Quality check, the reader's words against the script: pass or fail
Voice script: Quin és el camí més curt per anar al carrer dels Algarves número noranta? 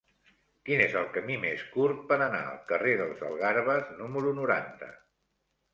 pass